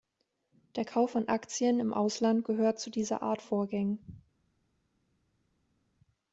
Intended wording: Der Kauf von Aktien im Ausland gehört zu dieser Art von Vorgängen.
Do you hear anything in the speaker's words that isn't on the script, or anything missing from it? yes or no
yes